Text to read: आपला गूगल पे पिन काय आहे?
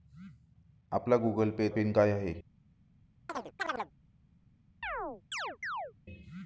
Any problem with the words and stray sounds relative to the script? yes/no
yes